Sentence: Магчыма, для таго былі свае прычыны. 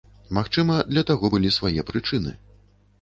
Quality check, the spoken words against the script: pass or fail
pass